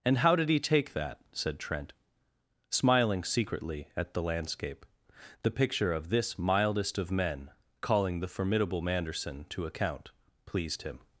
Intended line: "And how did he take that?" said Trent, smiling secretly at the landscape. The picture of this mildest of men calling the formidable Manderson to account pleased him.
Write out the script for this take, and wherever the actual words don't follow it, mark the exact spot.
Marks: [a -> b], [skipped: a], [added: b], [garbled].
"And how did he take that?" said Trent, smiling secretly at the landscape. The picture of this mildest of men calling the formidable Manderson to account pleased him.